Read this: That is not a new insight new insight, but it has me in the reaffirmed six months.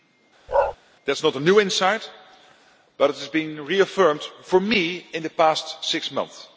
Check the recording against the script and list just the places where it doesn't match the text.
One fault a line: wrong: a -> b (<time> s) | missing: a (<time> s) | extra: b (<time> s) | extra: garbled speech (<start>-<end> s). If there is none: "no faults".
missing: new insight (2.1 s)
extra: been reaffirmed for (3.3 s)
wrong: reaffirmed -> past (5.3 s)